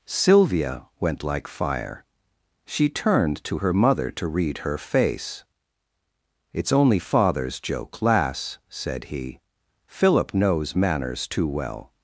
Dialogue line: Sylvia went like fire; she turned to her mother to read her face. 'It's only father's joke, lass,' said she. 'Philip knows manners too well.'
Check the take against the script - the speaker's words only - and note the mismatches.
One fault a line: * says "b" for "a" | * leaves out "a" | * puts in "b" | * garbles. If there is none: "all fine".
* says "he" for "she"